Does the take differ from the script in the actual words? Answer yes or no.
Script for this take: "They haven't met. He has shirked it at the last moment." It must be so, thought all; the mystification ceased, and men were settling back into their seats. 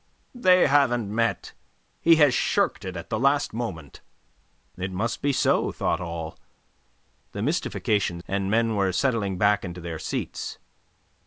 yes